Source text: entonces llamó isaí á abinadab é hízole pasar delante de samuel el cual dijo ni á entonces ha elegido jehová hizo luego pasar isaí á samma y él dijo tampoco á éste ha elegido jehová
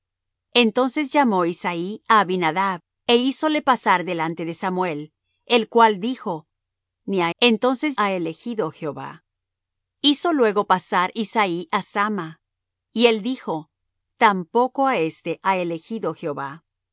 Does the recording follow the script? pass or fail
pass